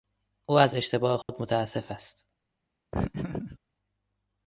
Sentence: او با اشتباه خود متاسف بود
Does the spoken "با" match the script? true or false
false